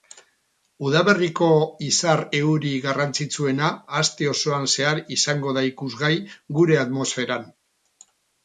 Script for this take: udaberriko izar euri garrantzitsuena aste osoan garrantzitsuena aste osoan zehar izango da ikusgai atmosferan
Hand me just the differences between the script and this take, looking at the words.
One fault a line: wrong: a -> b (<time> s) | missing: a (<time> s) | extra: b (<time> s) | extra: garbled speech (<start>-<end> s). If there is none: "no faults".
missing: garrantzitsuena aste osoan (4.7 s)
extra: gure (6.6 s)